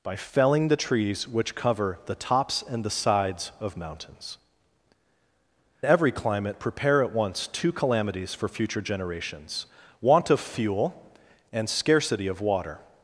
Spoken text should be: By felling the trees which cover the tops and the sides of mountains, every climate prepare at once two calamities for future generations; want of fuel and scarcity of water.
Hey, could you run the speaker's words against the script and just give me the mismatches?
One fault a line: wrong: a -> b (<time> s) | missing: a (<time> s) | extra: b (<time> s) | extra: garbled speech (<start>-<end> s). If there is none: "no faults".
no faults